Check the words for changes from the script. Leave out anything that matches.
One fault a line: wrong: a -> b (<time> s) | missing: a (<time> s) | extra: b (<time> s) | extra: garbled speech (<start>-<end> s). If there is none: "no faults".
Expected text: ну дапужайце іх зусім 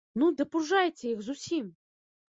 no faults